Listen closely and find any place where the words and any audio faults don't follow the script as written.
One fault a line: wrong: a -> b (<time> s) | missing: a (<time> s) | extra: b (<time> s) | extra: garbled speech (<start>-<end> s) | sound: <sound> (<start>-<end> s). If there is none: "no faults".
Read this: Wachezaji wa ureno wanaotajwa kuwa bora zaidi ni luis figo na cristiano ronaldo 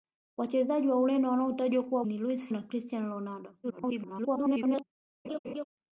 missing: bora zaidi (2.0 s)
missing: figo (2.5 s)
extra: garbled speech (3.6-4.8 s)
sound: laugh (5.2-5.6 s)